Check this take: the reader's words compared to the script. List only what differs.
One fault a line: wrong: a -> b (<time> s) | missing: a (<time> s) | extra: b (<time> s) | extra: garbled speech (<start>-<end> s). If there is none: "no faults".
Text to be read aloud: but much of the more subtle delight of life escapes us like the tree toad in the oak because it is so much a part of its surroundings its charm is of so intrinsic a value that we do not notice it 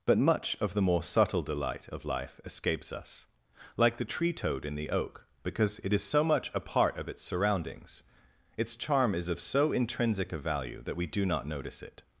no faults